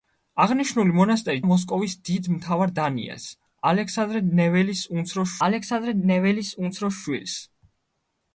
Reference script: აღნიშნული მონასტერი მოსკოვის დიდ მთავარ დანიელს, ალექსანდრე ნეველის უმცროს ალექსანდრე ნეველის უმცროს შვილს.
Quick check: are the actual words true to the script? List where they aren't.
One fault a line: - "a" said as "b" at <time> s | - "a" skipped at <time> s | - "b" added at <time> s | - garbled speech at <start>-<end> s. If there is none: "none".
none